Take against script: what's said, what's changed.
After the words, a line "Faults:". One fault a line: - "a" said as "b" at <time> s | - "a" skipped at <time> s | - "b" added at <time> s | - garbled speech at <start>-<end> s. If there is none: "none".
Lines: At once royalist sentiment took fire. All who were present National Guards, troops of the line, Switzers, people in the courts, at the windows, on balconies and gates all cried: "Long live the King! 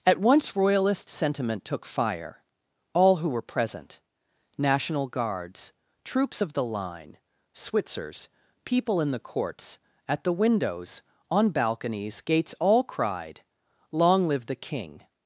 At once royalist sentiment took fire. All who were present National Guards, troops of the line, Switzers, people in the courts, at the windows, on balconies gates all cried: "Long live the King!
Faults:
- "and" skipped at 12.2 s